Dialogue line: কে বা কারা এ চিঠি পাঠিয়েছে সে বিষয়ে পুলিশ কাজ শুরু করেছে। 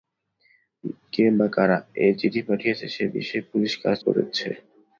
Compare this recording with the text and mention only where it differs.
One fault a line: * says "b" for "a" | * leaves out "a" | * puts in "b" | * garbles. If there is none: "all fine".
* leaves out "শুরু"